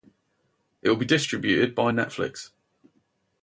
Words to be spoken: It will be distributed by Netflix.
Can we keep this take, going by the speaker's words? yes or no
yes